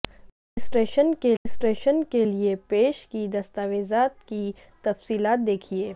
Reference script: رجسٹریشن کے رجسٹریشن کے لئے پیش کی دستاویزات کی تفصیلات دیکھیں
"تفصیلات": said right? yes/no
yes